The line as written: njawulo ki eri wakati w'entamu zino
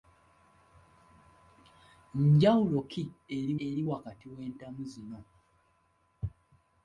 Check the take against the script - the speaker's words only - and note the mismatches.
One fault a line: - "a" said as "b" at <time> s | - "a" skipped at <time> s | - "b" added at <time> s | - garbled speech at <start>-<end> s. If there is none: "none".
- "eri" added at 3.7 s